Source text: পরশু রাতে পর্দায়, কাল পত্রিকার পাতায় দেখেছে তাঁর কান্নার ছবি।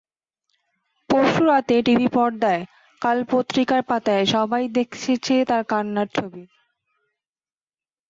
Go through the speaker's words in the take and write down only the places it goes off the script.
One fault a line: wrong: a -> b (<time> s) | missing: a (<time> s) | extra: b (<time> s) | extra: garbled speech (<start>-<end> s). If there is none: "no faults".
extra: টিভি (1.8 s)
extra: সবাই (4.3 s)